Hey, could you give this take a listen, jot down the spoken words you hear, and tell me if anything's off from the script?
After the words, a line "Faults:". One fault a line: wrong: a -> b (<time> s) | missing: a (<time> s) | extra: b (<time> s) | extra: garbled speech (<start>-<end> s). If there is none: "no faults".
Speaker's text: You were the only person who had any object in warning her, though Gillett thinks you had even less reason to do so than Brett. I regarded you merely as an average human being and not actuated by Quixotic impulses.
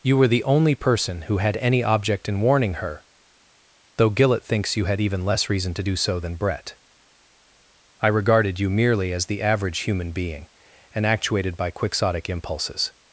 You were the only person who had any object in warning her, though Gillett thinks you had even less reason to do so than Brett. I regarded you merely as the average human being and actuated by Quixotic impulses.
Faults:
wrong: an -> the (9.2 s)
missing: not (11.0 s)